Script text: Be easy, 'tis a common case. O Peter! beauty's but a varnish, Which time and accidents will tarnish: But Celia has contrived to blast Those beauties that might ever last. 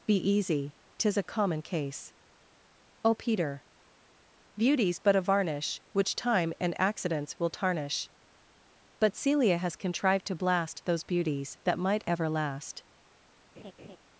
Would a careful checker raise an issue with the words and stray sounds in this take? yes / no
yes